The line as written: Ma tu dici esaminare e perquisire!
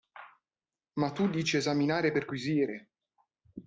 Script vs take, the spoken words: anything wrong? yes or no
no